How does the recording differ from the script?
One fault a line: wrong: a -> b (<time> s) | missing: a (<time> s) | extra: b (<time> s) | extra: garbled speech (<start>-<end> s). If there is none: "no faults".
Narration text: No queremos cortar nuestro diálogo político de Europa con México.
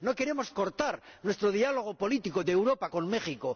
no faults